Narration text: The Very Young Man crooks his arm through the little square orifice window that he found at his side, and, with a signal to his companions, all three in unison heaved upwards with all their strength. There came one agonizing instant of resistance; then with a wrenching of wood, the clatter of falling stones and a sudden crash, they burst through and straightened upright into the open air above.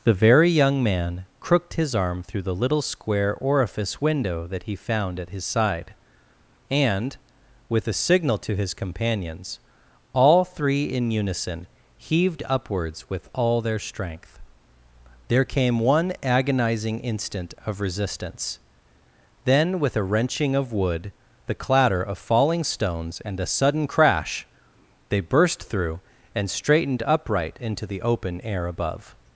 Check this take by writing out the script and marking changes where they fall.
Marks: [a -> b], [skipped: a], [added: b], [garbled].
The Very Young Man [crooks -> crooked] his arm through the little square orifice window that he found at his side, and, with a signal to his companions, all three in unison heaved upwards with all their strength. There came one agonizing instant of resistance; then with a wrenching of wood, the clatter of falling stones and a sudden crash, they burst through and straightened upright into the open air above.